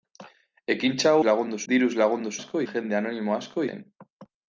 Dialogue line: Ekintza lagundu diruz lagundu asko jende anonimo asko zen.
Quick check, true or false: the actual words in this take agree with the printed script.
true